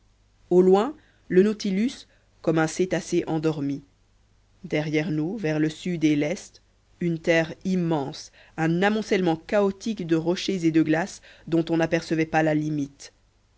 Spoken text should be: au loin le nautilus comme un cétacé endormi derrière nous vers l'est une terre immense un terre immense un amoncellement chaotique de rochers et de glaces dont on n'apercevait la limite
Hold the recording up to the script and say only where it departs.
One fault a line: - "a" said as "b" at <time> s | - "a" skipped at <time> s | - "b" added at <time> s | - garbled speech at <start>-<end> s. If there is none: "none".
- "l'est une terre immense un" said as "le sud et l'est une" at 5.6 s
- "pas" added at 12.3 s